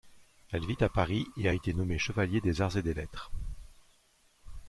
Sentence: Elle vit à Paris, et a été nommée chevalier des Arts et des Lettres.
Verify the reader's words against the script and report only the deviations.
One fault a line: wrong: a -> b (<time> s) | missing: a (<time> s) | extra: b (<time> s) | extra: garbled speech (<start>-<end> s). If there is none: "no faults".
no faults